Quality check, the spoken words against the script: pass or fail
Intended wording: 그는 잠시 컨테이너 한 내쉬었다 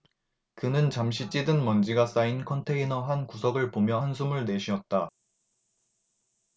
fail